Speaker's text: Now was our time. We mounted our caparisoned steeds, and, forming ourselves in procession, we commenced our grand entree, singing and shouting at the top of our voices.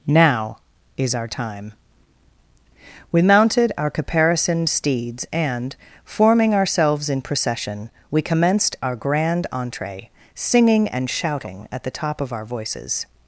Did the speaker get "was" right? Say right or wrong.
wrong